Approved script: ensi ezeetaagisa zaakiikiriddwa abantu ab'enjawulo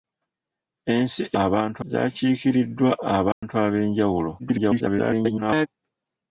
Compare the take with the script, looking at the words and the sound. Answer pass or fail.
fail